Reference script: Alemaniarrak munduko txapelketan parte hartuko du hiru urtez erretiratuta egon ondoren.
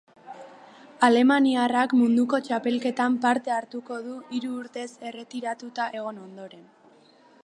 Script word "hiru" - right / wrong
right